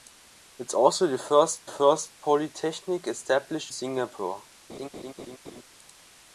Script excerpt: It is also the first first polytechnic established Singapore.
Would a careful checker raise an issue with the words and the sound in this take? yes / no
yes